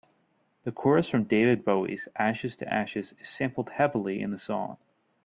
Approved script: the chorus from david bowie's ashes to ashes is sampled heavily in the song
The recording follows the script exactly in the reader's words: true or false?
true